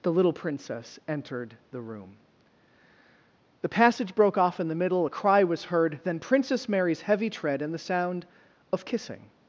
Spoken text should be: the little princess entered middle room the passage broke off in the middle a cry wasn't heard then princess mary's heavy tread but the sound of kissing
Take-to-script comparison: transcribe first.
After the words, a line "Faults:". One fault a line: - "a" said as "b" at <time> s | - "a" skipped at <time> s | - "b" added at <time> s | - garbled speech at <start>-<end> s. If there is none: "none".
the little princess entered the room the passage broke off in the middle a cry was heard then princess mary's heavy tread and the sound of kissing
Faults:
- "middle" said as "the" at 1.7 s
- "wasn't" said as "was" at 5.4 s
- "but" said as "and" at 7.6 s